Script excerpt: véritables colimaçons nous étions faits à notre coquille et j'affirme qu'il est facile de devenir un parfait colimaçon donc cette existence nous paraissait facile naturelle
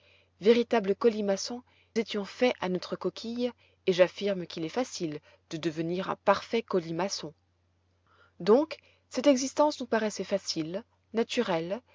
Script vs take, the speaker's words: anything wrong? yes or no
yes